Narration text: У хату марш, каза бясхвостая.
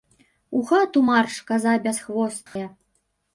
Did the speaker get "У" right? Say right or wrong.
right